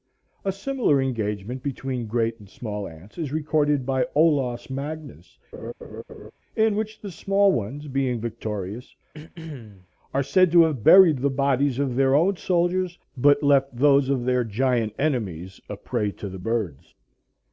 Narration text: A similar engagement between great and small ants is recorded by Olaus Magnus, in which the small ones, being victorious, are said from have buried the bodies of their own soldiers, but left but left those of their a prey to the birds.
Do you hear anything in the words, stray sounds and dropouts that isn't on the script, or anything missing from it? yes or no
yes